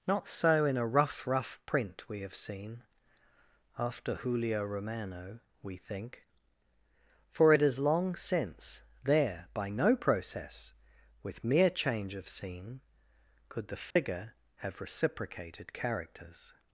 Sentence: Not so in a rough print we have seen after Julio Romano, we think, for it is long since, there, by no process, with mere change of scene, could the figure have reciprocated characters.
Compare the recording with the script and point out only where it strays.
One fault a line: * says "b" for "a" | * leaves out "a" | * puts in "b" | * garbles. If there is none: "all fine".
* puts in "rough"